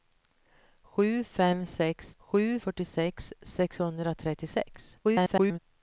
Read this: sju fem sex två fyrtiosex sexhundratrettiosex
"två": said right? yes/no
no